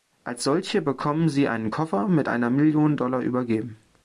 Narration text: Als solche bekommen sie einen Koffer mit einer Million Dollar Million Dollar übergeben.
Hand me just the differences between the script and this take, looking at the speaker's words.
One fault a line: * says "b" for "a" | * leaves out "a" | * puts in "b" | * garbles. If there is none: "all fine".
* leaves out "Million Dollar"